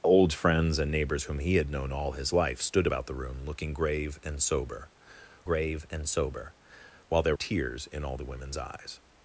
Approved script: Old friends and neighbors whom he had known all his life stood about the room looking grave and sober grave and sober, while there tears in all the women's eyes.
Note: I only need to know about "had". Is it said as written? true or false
true